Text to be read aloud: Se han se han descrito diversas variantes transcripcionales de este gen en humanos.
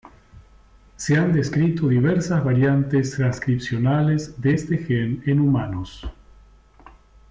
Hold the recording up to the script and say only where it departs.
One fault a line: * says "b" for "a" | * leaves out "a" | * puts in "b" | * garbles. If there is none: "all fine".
* leaves out "se han"